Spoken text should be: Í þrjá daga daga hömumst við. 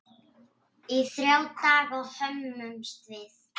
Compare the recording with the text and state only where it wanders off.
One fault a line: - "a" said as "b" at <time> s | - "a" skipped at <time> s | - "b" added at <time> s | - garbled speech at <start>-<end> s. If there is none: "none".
- "daga" skipped at 2.0 s